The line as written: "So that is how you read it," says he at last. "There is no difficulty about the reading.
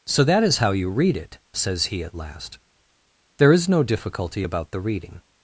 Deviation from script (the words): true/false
false